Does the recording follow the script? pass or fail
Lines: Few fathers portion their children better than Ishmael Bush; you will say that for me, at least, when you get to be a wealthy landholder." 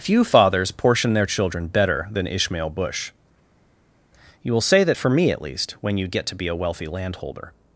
pass